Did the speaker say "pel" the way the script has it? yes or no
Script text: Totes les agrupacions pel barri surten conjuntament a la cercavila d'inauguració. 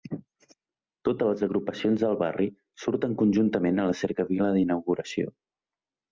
no